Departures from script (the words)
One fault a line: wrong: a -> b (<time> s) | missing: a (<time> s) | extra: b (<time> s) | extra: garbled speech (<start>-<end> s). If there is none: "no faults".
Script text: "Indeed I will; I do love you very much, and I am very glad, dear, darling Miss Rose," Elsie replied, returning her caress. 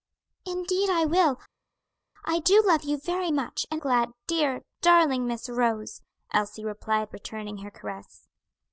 missing: I am very (3.8 s)